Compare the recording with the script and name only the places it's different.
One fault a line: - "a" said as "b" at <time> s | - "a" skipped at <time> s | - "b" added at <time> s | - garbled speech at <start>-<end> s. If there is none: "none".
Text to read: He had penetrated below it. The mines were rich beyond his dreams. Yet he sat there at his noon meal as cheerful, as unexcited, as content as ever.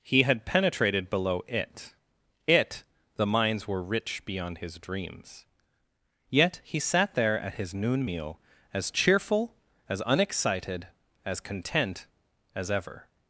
- "it" added at 2.5 s